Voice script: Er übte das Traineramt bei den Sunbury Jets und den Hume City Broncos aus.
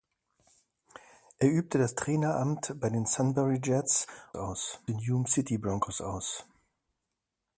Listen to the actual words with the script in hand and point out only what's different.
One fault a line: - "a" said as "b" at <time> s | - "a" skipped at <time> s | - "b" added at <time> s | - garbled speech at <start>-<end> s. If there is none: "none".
- "und" said as "aus" at 4.3 s